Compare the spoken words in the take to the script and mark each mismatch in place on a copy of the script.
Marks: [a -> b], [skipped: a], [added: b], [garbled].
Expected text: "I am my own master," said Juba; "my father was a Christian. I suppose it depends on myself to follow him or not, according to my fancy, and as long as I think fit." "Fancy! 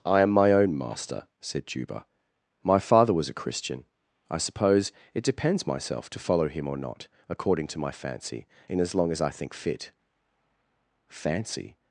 "I am my own master," said Juba; "my father was a Christian. I suppose it depends [skipped: on] myself to follow him or not, according to my fancy, [and -> in] as long as I think fit." "Fancy!